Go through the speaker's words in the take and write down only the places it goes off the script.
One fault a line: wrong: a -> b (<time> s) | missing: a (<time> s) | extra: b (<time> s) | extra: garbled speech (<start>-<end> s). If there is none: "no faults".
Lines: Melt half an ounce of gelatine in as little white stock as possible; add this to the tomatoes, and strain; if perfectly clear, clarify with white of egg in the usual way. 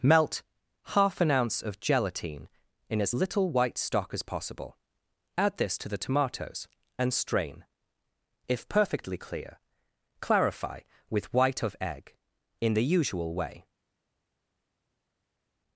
no faults